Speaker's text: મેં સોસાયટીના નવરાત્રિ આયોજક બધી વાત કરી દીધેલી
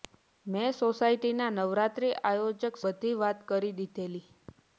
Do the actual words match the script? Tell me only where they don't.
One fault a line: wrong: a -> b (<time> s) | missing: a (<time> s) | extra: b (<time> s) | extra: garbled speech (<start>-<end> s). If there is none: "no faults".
no faults